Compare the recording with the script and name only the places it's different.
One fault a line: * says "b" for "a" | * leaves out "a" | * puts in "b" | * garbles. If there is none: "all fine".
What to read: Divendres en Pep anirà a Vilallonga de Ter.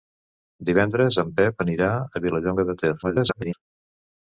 * garbles